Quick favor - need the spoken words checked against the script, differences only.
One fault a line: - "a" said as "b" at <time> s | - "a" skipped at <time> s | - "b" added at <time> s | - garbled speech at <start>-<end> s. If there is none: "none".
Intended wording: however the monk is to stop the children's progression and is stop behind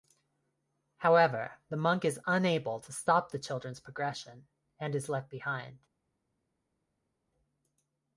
- "unable" added at 2.3 s
- "stop" said as "left" at 5.1 s